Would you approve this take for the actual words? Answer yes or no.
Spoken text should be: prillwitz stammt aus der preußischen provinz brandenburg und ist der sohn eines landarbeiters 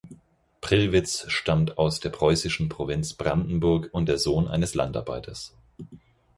no